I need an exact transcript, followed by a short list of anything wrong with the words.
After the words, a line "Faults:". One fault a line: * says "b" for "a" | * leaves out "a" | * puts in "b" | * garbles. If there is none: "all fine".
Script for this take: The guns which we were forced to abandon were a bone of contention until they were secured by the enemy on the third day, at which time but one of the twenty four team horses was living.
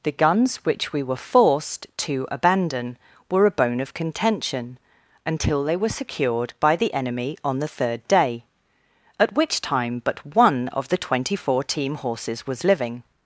The guns which we were forced to abandon were a bone of contention until they were secured by the enemy on the third day, at which time but one of the twenty four team horses was living.
Faults:
all fine